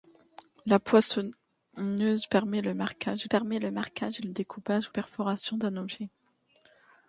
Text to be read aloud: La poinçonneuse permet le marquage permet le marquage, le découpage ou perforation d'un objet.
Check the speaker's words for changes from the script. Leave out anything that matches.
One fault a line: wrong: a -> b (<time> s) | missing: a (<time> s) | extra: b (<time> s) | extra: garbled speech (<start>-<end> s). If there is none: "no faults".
no faults